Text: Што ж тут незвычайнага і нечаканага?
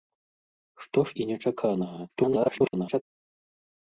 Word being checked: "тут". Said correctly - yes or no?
no